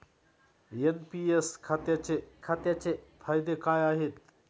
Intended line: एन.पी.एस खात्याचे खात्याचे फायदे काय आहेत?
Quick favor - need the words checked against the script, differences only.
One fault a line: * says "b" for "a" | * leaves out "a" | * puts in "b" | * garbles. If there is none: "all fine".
all fine